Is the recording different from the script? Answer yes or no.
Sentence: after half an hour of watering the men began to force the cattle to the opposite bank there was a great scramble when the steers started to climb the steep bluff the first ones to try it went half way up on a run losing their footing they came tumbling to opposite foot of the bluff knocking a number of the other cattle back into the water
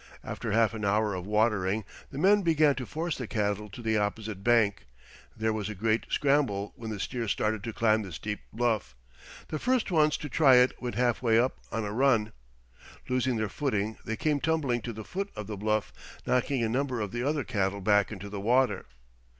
yes